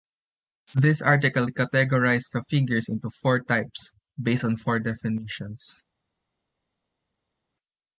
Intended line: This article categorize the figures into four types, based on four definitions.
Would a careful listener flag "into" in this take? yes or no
no